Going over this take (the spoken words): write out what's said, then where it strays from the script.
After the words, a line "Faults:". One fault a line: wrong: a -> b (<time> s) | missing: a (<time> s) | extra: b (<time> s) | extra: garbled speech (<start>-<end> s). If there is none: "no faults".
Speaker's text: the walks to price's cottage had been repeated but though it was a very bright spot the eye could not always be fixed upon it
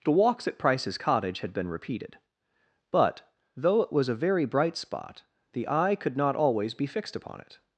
the walks at price's cottage had been repeated but though it was a very bright spot the eye could not always be fixed upon it
Faults:
wrong: to -> at (0.5 s)